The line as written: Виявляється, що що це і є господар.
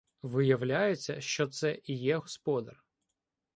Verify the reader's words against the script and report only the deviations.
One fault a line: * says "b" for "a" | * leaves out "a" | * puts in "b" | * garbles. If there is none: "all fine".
* leaves out "що"